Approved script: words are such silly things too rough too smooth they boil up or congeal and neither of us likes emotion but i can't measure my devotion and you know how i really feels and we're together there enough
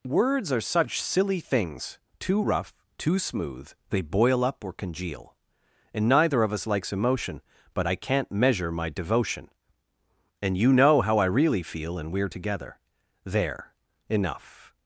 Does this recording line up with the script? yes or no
no